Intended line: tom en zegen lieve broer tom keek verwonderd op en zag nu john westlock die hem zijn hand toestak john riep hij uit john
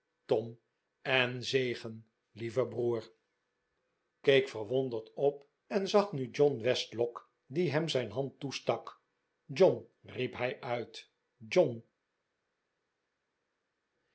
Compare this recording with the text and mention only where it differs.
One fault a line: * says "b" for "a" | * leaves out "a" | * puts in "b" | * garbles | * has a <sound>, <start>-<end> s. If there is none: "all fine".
* leaves out "tom"